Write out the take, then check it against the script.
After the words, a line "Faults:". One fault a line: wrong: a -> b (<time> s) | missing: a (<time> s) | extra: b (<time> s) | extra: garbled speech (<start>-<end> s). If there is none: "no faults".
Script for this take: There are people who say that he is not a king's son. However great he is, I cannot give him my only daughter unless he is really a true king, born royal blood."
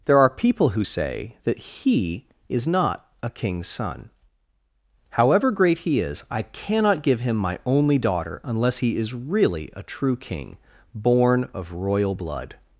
There are people who say that he is not a king's son. However great he is, I cannot give him my only daughter unless he is really a true king, born of royal blood."
Faults:
extra: of (11.5 s)